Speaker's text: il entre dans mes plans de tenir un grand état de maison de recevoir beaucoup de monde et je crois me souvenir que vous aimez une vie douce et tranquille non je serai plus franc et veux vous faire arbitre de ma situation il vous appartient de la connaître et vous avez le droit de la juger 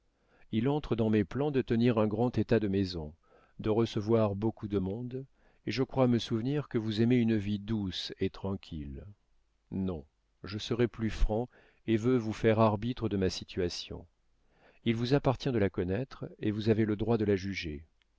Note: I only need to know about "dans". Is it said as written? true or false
true